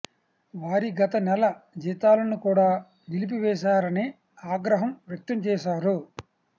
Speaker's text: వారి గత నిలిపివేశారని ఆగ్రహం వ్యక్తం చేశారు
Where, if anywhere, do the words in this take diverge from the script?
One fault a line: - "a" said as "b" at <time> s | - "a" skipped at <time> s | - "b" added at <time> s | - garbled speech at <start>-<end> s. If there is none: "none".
- "నెల జీతాలను కూడా" added at 1.2 s